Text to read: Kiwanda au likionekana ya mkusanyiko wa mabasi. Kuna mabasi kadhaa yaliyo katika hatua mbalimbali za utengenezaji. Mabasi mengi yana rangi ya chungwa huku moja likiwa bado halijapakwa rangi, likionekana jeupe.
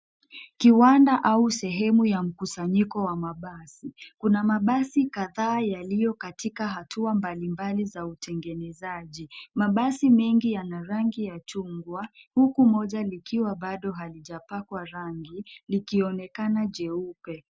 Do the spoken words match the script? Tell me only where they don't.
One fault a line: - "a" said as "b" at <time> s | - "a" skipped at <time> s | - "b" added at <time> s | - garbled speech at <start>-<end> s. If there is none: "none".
- "likionekana" said as "sehemu" at 1.5 s